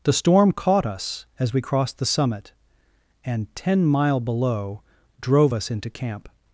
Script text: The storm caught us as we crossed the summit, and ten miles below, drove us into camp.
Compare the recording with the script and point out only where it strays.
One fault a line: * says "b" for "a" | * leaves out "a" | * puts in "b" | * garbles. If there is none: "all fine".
* says "mile" for "miles"